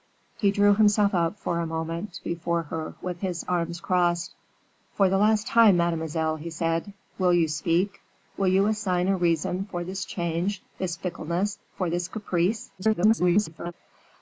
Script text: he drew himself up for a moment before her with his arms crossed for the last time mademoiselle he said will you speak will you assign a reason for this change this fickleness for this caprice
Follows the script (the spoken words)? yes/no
no